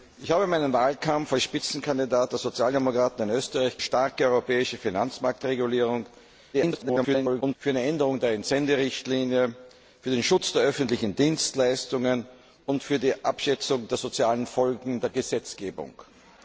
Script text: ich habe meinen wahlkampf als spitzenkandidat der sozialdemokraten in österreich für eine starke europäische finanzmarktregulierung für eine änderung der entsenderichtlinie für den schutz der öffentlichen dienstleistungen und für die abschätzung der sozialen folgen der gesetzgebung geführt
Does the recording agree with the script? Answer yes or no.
no